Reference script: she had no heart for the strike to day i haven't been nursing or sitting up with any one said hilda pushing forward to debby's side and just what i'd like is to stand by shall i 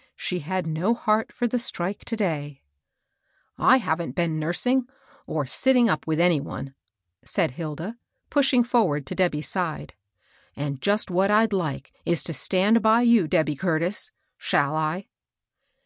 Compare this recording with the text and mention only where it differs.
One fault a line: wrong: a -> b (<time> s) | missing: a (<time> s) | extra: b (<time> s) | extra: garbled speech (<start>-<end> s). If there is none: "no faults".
extra: you debby curtis (13.0 s)